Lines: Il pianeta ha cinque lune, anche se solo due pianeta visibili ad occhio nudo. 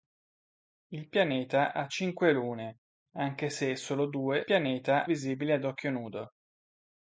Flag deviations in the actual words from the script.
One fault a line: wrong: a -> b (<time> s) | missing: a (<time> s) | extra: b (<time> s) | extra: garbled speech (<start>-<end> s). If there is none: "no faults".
no faults